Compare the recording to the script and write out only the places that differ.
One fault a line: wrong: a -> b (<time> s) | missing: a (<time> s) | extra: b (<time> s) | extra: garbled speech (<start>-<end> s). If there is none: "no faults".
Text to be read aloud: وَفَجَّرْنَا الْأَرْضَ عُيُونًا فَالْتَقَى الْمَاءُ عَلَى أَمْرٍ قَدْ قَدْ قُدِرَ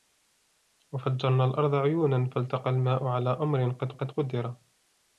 no faults